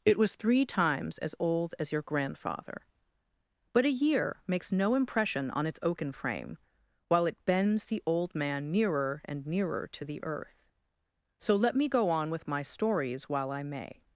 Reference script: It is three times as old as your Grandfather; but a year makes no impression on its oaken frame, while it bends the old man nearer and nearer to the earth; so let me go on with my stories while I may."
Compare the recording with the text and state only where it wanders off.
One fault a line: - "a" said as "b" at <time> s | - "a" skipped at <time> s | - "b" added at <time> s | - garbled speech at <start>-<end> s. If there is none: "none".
- "is" said as "was" at 0.2 s